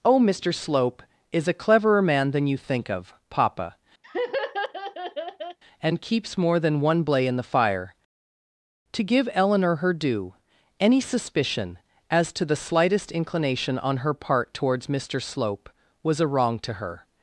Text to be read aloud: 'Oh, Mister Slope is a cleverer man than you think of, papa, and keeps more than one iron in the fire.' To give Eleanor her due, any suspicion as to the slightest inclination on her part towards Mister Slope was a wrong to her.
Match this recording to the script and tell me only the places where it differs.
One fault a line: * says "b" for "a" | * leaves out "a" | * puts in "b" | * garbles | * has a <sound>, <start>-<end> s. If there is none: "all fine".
* has a laugh, 4.0-5.6 s
* says "blay" for "iron"